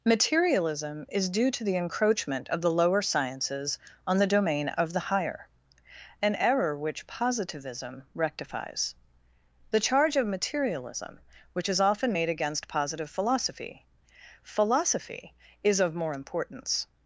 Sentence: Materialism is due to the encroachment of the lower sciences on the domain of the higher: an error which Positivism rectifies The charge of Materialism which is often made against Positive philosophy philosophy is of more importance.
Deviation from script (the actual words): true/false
false